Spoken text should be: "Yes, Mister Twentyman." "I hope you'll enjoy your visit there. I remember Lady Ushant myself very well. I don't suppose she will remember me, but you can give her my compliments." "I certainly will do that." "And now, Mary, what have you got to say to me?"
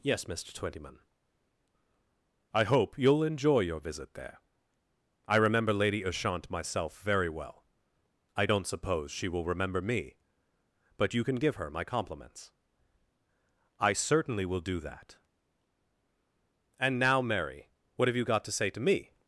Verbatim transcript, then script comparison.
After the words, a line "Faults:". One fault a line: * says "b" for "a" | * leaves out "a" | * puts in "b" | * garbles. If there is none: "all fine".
"Yes, Mister Twentyman." "I hope you'll enjoy your visit there. I remember Lady Ushant myself very well. I don't suppose she will remember me, but you can give her my compliments." "I certainly will do that." "And now, Mary, what have you got to say to me?"
Faults:
all fine